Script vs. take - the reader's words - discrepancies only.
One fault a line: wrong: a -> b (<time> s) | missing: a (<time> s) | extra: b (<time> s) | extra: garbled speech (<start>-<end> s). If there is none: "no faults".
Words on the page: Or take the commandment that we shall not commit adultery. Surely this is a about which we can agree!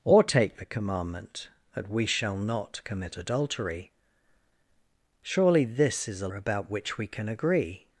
no faults